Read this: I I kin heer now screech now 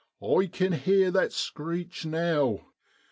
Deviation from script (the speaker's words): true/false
true